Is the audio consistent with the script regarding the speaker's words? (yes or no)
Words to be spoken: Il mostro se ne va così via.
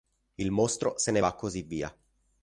yes